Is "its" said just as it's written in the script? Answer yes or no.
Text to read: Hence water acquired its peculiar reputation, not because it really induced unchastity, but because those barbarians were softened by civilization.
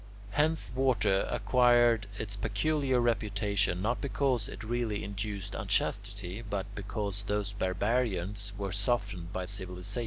yes